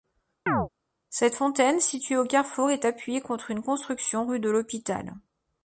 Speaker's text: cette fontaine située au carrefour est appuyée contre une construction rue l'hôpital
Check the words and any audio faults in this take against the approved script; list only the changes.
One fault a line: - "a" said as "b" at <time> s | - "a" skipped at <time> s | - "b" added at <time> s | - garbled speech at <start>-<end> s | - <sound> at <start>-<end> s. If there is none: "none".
- chirp at 0.5-0.7 s
- "de" added at 4.4 s